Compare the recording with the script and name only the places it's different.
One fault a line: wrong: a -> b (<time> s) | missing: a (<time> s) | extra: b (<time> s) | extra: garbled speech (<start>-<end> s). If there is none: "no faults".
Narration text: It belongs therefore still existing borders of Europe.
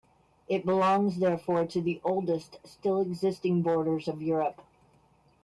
extra: to the oldest (1.7 s)